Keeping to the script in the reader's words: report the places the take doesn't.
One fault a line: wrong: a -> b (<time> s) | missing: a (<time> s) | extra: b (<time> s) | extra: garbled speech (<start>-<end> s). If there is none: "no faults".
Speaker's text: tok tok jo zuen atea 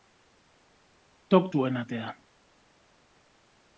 missing: tok jo (1.5 s)